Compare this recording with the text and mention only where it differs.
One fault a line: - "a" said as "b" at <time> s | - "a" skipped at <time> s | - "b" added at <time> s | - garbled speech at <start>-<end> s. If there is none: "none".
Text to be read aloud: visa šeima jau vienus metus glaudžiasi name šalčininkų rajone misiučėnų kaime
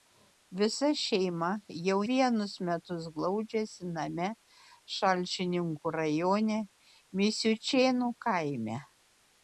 none